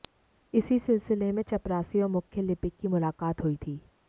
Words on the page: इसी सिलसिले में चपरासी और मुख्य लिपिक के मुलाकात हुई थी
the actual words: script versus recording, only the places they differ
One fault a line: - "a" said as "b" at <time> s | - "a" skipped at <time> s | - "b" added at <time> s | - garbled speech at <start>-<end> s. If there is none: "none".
- "के" said as "की" at 2.8 s